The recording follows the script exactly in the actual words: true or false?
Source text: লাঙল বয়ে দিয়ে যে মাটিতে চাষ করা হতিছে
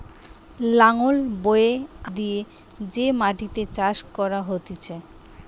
true